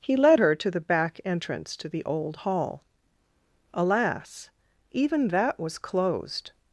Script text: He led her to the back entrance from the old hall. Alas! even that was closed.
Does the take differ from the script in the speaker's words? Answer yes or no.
yes